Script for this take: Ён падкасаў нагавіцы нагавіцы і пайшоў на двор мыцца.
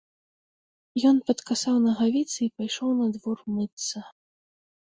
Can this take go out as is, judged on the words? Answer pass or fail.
fail